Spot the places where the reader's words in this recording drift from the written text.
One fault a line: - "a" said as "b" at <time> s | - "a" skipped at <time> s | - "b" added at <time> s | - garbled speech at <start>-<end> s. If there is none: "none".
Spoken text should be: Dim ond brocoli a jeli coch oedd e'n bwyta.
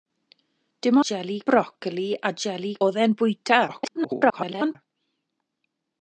- "ond" said as "jeli" at 1.1 s
- "coch" skipped at 2.7 s
- garbled speech at 3.7-4.8 s